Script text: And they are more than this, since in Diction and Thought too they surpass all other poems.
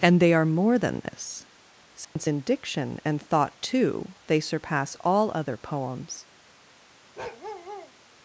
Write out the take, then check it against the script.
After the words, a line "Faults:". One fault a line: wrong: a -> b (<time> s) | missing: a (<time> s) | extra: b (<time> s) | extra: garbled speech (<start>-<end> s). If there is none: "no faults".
And they are more than this, since in Diction and Thought too they surpass all other poems.
Faults:
no faults